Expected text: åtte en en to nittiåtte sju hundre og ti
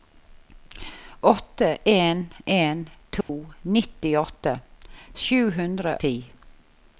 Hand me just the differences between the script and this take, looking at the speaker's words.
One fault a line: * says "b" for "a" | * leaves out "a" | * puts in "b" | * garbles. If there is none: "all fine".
* leaves out "og"